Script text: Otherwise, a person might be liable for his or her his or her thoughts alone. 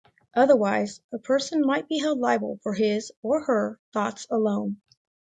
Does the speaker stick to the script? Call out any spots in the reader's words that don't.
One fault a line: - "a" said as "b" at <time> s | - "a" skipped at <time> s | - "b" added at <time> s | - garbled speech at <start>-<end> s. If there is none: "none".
- "held" added at 2.0 s
- "his or her" skipped at 3.8 s